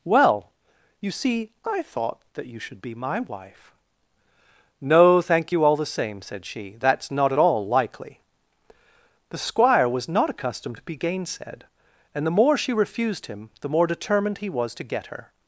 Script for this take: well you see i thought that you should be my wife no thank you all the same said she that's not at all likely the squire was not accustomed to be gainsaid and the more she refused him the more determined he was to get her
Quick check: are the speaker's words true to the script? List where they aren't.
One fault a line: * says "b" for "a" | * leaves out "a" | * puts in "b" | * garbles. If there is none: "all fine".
all fine